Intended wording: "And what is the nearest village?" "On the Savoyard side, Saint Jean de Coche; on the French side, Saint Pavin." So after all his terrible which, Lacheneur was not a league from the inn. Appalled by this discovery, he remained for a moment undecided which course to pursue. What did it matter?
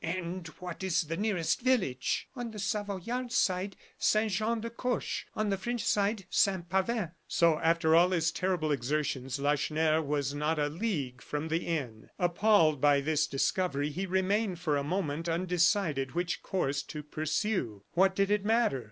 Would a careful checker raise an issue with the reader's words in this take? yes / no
yes